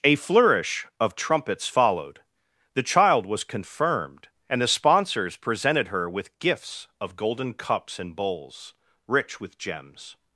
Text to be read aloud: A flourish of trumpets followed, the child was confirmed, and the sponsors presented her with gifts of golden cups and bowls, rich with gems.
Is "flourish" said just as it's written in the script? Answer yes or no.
yes